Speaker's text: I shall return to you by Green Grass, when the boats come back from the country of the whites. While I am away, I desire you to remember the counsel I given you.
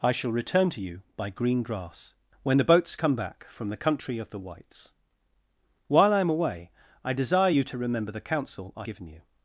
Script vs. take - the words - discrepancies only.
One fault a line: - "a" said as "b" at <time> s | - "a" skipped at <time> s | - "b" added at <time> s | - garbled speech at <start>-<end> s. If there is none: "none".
none